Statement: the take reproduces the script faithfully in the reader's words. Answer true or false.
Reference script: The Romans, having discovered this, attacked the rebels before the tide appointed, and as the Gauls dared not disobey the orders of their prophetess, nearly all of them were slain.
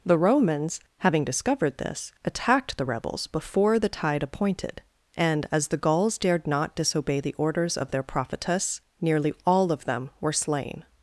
true